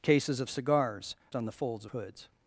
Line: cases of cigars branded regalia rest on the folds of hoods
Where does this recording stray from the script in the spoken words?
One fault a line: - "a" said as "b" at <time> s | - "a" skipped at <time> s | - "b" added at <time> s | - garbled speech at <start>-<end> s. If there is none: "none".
- "branded regalia rest" skipped at 1.1 s
- "of" skipped at 1.9 s